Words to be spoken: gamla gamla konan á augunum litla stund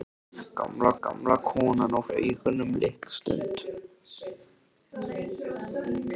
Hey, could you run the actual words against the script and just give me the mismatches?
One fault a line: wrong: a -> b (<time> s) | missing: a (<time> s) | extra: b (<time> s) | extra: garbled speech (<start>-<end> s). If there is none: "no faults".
no faults